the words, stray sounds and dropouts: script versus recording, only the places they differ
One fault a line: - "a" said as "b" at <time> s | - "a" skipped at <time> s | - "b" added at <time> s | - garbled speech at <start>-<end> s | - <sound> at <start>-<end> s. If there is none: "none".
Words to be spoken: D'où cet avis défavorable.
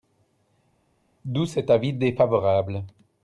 none